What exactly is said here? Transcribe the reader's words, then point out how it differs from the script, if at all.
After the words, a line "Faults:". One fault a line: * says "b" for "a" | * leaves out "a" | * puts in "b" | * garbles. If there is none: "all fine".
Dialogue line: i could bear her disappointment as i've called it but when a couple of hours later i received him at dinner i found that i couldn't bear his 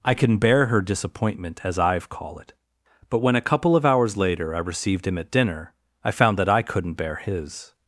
i can bear her disappointment as i've call it but when a couple of hours later i received him at dinner i found that i couldn't bear his
Faults:
* says "can" for "could"
* says "call" for "called"